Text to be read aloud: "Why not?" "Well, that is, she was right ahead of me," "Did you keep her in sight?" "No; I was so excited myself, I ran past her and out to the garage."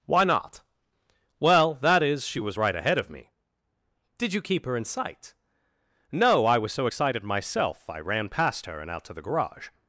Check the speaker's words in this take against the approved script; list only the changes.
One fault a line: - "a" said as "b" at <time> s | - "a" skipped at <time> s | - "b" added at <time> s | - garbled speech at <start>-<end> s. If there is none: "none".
none